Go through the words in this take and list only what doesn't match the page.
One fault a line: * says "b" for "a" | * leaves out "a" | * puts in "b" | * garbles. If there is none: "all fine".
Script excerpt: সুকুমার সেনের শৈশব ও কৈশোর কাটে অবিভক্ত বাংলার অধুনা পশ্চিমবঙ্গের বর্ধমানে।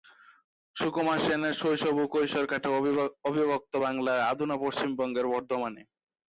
all fine